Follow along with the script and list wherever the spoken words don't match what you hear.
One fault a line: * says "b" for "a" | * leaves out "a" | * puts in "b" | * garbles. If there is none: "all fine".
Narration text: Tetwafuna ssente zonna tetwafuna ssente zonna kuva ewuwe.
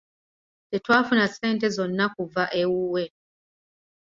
* leaves out "tetwafuna ssente zonna"